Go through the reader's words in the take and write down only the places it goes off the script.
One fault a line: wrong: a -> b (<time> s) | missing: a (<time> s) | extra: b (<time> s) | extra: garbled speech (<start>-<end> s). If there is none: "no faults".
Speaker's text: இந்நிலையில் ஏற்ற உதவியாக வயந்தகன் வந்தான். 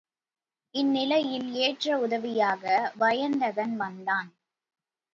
no faults